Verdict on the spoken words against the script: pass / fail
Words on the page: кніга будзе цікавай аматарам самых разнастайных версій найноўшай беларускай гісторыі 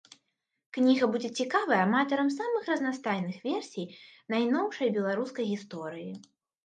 pass